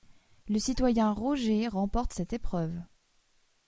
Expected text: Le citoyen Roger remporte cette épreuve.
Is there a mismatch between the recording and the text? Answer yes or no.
no